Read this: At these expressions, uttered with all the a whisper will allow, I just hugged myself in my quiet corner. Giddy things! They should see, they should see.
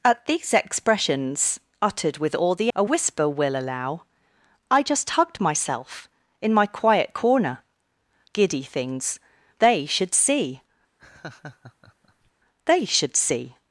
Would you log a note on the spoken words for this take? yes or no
no